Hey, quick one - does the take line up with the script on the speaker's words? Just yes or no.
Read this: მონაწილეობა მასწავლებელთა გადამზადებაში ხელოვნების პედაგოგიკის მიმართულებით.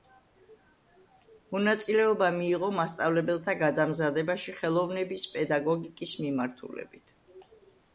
no